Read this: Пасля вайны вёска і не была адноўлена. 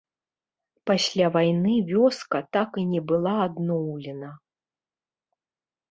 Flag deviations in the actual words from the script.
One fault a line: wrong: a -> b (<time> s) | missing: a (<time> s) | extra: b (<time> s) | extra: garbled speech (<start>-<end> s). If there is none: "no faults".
extra: так (2.6 s)